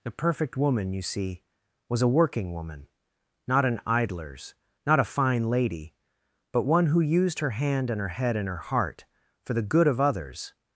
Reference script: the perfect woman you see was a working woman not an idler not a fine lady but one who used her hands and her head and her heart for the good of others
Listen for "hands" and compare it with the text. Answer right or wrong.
wrong